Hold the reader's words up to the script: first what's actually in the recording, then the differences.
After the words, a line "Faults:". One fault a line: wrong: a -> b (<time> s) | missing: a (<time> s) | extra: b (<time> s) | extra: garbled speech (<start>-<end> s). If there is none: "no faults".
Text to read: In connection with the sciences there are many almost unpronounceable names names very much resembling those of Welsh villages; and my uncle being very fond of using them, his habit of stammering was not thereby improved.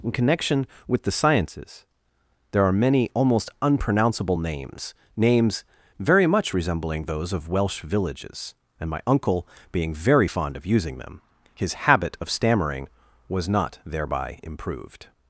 In connection with the sciences there are many almost unpronounceable names names very much resembling those of Welsh villages; and my uncle being very fond of using them, his habit of stammering was not thereby improved.
Faults:
no faults